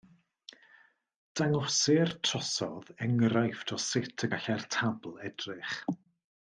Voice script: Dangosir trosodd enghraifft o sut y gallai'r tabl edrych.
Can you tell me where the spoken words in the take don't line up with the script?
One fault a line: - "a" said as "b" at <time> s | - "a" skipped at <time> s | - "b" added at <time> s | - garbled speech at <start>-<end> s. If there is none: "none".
none